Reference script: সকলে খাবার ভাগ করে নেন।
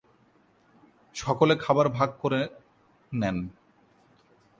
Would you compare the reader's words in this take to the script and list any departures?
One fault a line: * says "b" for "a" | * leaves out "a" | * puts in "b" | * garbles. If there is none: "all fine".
all fine